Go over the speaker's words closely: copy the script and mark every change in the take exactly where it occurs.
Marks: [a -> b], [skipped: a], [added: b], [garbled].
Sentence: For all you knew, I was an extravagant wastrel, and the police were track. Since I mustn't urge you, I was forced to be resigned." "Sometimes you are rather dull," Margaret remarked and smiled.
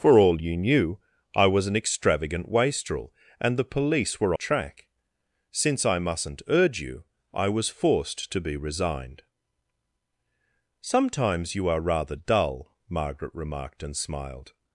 For all you knew, I was an extravagant wastrel, and the police were track. Since I mustn't urge you, I was forced to be resigned." "Sometimes you are rather dull," Margaret remarked and smiled.